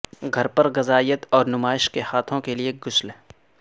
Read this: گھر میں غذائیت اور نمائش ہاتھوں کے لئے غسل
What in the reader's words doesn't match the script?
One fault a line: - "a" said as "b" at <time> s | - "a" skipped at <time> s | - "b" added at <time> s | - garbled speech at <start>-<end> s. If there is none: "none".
- "میں" said as "پر" at 0.5 s
- "کے" added at 1.9 s